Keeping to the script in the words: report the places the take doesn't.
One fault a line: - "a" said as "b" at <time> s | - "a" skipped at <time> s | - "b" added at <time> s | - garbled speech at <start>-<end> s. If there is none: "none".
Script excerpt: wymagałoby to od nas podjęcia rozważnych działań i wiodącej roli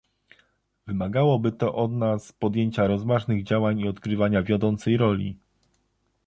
- "odgrywania" added at 3.9 s